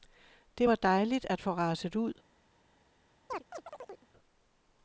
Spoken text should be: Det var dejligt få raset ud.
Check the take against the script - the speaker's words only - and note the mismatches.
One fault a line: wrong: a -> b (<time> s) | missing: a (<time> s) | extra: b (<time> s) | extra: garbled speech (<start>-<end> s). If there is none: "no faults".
extra: at (1.3 s)